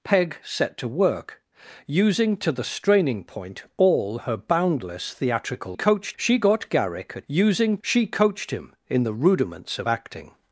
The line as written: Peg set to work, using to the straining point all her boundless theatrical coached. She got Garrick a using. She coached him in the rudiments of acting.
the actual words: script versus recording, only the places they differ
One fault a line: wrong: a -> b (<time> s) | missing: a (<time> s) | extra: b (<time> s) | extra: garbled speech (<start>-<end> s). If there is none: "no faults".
no faults